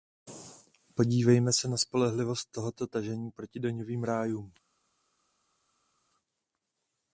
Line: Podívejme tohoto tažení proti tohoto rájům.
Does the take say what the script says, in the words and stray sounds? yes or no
no